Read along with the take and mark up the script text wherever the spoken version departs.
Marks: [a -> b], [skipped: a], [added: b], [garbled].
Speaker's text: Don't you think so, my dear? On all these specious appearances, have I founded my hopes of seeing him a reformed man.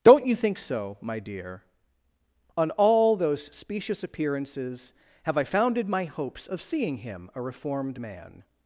Don't you think so, my dear? On all [these -> those] specious appearances, have I founded my hopes of seeing him a reformed man.